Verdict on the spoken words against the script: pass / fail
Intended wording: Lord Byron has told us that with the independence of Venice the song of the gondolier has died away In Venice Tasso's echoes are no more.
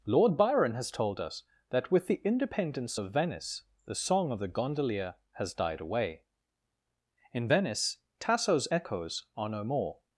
pass